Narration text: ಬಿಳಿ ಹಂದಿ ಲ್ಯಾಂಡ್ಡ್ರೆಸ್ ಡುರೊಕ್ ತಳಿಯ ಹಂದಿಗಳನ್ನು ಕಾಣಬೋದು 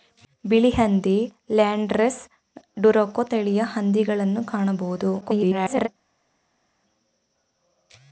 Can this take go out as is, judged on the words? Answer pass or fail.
fail